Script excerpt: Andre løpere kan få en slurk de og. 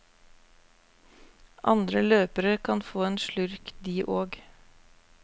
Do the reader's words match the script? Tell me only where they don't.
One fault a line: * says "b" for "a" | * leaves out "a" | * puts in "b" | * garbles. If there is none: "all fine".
all fine